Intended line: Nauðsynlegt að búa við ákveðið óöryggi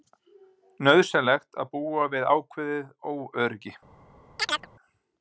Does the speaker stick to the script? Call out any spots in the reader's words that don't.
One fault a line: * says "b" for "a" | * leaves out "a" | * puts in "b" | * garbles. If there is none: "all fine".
all fine